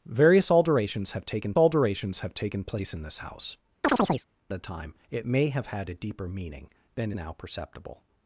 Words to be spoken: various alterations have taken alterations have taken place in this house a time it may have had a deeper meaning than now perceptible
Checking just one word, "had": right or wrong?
right